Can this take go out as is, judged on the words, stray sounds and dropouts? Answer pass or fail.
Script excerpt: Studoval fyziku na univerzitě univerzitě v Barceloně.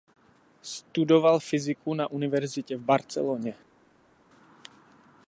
fail